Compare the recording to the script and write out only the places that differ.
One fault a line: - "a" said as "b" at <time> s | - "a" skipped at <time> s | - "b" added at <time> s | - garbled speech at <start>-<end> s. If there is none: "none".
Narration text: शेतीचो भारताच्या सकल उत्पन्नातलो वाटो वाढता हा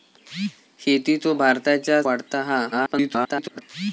- "सकल उत्पन्नातलो वाटो" skipped at 2.0 s
- garbled speech at 2.7-3.6 s